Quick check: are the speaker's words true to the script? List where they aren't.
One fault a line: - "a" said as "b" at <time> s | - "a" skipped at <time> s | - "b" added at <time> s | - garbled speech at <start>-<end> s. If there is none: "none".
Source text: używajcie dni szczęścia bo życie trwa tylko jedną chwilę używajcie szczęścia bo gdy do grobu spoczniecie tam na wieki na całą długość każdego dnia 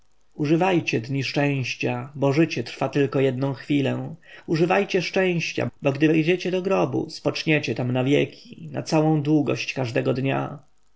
- "wejdziecie" added at 6.1 s